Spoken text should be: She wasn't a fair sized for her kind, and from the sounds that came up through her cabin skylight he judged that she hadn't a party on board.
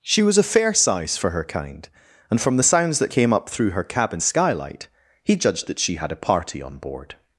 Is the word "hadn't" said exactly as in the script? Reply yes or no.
no